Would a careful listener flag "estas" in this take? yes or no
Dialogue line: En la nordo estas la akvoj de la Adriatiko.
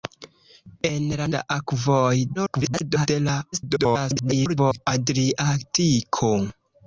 yes